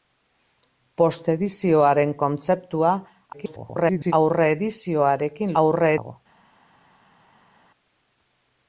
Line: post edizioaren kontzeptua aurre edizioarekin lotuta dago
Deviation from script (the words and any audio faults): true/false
true